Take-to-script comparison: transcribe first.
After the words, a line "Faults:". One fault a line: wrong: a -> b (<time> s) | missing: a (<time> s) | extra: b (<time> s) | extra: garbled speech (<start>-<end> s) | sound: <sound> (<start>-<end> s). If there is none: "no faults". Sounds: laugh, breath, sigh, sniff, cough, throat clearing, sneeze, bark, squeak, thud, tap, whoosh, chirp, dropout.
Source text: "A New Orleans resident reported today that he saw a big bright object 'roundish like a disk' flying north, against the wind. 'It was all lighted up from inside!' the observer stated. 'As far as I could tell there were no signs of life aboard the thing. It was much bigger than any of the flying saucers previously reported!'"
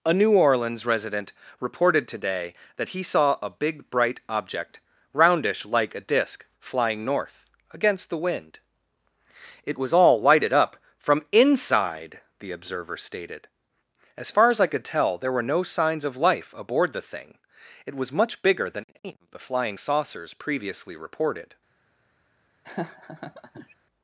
"A New Orleans resident reported today that he saw a big bright object 'roundish like a disk' flying north, against the wind. 'It was all lighted up from inside!' the observer stated. 'As far as I could tell there were no signs of life aboard the thing. It was much bigger than any of the flying saucers previously reported!'"
Faults:
sound: laugh (22.6-23.7 s)